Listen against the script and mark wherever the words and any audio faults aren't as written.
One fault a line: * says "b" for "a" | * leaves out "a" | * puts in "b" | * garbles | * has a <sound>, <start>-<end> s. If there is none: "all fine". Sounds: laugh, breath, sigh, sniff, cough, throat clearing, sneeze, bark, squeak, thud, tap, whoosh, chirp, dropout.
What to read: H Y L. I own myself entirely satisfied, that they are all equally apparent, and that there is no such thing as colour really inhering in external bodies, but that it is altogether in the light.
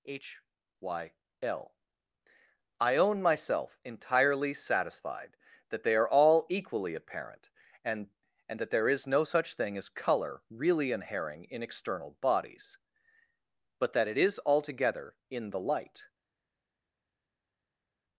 * puts in "and"